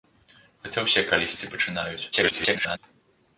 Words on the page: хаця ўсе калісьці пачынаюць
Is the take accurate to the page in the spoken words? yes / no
no